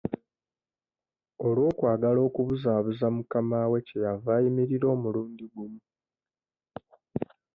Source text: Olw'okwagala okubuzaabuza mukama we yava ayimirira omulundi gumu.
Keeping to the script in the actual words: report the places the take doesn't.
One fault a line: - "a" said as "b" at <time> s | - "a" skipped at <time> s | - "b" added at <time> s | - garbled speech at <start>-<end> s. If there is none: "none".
- "kye" added at 3.9 s